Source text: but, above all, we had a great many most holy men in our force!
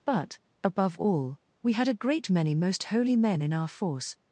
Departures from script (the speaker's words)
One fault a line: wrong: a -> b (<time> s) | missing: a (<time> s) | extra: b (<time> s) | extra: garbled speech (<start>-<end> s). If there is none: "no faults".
no faults